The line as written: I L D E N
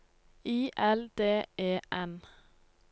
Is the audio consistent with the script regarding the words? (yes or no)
yes